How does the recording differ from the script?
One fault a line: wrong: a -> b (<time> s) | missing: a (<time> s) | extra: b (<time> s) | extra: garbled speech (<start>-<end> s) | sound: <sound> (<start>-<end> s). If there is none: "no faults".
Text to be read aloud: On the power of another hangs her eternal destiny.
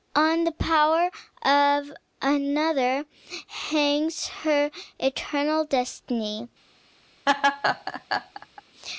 sound: laugh (7.3-8.6 s)